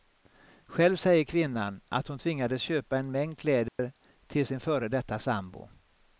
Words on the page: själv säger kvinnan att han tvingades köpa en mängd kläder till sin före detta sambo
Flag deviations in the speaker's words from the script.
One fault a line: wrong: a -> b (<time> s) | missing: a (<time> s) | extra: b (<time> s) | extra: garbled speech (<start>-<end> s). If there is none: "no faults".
wrong: han -> hon (2.1 s)